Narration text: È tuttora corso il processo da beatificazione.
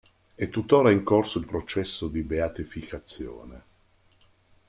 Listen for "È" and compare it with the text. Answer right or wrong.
right